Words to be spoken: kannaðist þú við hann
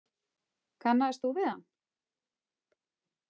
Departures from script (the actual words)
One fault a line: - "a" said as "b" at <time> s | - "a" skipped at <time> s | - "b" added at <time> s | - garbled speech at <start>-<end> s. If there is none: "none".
none